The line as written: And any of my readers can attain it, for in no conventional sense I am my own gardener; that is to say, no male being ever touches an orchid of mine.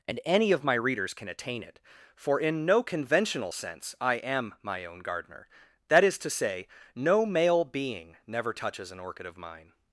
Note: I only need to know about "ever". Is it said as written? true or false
false